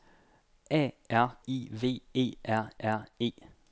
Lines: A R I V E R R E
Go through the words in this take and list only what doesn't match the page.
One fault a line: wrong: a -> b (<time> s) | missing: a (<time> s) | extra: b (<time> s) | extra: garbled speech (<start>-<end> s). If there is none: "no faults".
no faults